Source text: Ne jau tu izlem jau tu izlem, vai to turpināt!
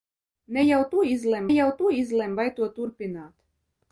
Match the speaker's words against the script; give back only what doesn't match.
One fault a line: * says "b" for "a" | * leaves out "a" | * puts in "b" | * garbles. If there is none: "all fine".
all fine